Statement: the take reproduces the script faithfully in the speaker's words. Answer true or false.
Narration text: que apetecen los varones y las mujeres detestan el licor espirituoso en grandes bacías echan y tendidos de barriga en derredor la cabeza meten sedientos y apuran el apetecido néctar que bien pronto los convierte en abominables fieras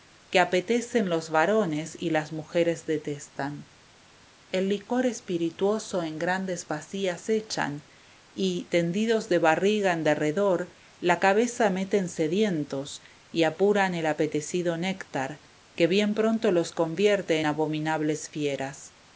false